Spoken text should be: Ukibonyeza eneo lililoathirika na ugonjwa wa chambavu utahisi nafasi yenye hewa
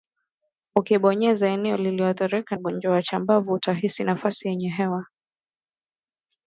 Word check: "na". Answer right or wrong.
wrong